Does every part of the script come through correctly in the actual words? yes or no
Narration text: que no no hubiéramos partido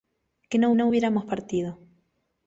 yes